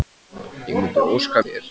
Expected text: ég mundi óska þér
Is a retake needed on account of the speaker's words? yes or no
no